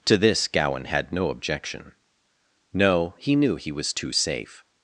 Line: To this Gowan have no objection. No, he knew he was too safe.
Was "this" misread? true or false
false